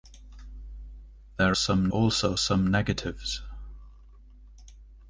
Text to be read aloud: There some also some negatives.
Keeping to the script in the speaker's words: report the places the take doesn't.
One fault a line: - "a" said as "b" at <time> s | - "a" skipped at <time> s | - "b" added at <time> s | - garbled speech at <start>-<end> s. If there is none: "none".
none